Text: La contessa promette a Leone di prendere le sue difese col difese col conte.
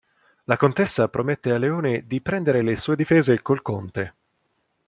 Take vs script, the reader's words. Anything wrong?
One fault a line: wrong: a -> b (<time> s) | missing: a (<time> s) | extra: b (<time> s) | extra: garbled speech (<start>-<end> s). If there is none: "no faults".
missing: difese col (3.6 s)